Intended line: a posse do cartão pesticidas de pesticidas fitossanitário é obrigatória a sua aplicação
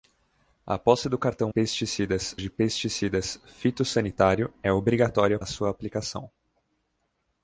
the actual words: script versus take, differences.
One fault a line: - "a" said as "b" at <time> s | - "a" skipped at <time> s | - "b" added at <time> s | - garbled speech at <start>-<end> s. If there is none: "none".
none